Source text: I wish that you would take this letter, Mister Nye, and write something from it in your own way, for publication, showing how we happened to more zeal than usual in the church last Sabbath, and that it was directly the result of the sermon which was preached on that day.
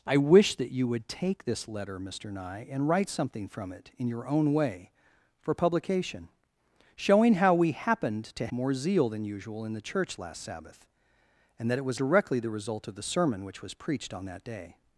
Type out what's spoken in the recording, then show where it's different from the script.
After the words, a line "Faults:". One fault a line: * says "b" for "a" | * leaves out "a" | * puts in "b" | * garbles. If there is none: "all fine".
I wish that you would take this letter, Mister Nye, and write something from it in your own way, for publication, showing how we happened to more zeal than usual in the church last Sabbath, and that it was directly the result of the sermon which was preached on that day.
Faults:
all fine